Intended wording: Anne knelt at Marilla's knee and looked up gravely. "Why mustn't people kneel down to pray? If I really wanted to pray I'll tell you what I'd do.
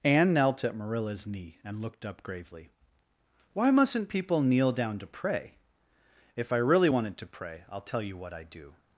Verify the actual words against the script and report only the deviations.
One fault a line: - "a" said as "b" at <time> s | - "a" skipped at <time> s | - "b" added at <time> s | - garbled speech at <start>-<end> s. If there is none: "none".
none